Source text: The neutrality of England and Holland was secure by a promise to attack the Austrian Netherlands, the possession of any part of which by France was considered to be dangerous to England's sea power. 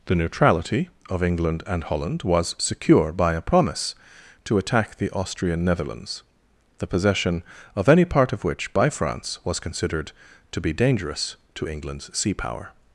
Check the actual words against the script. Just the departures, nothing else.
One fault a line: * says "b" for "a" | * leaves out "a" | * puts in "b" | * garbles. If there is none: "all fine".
all fine